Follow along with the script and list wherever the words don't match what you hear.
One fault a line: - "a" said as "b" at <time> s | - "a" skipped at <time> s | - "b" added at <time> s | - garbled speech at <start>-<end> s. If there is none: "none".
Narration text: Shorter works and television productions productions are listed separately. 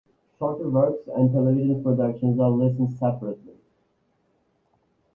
- "productions" skipped at 2.4 s